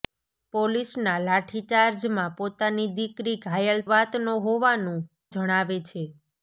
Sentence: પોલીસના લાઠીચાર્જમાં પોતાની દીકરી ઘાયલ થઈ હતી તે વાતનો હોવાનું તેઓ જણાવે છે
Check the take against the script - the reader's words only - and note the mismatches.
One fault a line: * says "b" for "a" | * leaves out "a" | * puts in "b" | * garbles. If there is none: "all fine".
* leaves out "થઈ હતી તે"
* leaves out "તેઓ"